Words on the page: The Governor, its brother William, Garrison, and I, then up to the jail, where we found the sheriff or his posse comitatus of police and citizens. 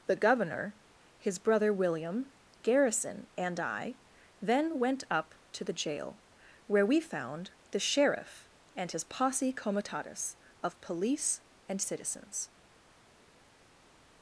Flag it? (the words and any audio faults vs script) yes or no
yes